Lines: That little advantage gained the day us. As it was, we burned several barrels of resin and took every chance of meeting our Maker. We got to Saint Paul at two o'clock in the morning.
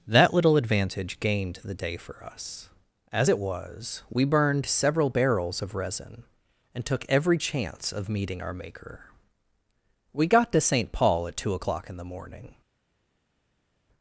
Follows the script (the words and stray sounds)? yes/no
no